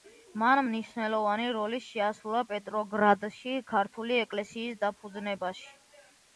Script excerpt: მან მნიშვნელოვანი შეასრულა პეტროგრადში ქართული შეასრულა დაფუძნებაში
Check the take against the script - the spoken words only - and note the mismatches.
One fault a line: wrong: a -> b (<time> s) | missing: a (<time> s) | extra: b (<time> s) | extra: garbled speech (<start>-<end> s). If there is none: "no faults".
extra: როლი (1.6 s)
wrong: შეასრულა -> ეკლესიის (4.3 s)